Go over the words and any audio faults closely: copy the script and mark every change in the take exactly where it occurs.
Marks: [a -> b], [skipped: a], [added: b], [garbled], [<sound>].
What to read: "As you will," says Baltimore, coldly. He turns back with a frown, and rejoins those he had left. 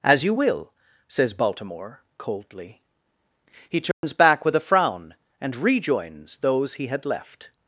"As you will," says Baltimore, coldly. He turns [dropout] back with a frown, and rejoins those he had left.